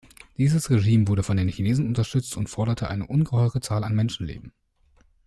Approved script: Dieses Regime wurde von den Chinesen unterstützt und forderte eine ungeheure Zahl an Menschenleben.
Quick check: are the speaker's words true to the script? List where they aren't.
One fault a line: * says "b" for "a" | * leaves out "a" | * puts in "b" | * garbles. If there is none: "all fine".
all fine